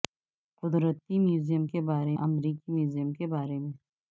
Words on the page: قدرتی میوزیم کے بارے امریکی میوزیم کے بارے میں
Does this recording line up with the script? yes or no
yes